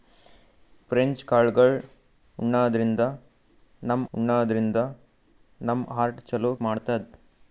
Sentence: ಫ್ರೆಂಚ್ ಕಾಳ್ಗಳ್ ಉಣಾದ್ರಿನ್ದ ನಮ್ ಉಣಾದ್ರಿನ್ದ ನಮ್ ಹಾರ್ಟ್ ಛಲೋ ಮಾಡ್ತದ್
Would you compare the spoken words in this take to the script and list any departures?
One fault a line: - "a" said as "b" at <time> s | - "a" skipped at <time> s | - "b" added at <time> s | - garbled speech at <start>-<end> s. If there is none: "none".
none